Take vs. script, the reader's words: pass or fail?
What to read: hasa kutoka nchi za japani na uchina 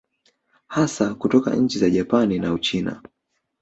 pass